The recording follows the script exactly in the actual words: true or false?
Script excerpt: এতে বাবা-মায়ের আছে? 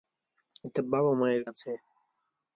true